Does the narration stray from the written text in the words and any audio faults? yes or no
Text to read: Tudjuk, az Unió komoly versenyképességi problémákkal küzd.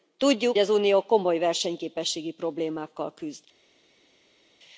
no